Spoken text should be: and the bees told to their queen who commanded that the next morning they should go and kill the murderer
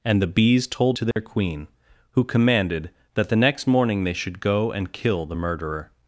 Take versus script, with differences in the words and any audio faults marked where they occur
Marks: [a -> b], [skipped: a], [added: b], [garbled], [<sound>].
and the bees told to their [dropout] queen who commanded that the next morning they should go and kill the murderer